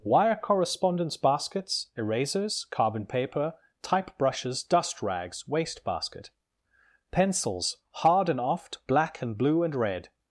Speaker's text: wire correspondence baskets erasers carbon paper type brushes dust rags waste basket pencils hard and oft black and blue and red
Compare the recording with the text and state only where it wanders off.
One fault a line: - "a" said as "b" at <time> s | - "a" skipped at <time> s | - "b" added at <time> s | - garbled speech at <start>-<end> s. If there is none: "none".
none